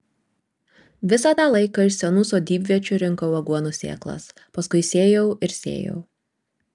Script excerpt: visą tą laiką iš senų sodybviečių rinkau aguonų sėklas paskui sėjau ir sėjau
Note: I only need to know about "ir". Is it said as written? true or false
true